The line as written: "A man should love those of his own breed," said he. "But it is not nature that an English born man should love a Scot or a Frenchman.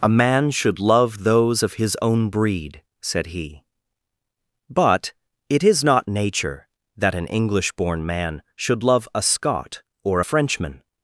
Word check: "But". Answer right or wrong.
right